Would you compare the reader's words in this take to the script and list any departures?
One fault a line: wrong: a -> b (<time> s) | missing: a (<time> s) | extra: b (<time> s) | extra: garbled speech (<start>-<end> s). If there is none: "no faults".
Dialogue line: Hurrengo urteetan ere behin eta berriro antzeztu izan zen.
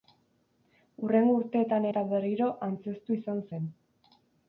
missing: ere behin (1.9 s)